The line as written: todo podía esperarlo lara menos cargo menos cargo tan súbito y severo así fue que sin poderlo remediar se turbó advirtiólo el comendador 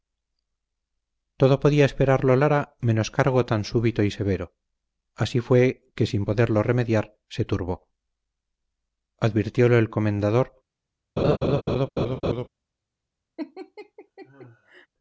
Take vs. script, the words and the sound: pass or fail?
fail